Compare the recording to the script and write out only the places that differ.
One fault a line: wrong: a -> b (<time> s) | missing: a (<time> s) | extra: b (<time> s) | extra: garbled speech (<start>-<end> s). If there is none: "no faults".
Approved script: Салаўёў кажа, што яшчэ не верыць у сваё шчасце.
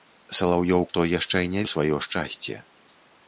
missing: кажа (0.8 s)
missing: верыць (1.6 s)